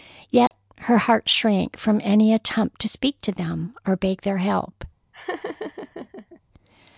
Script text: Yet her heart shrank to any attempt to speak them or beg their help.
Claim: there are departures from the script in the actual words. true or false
true